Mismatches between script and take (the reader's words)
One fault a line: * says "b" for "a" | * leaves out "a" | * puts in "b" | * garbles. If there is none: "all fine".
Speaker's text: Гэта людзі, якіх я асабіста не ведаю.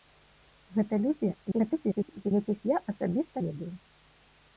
* garbles
* leaves out "не"